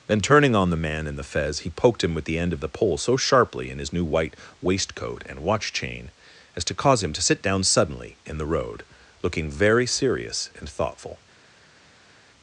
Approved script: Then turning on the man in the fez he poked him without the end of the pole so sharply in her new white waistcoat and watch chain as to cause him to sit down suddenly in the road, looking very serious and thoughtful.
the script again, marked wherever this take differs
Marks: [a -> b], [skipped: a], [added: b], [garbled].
Then turning on the man in the fez he poked him [without -> with] the end of the pole so sharply in [her -> his] new white waistcoat and watch chain as to cause him to sit down suddenly in the road, looking very serious and thoughtful.